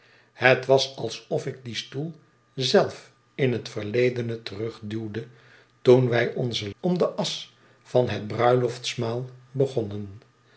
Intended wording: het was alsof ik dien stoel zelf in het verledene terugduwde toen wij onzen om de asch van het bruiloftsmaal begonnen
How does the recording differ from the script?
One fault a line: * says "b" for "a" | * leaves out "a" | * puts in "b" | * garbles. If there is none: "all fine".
all fine